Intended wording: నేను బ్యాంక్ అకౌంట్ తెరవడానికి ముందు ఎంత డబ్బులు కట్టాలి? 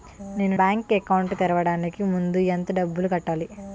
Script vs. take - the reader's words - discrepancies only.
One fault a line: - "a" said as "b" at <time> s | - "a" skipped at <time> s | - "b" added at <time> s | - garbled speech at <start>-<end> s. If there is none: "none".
none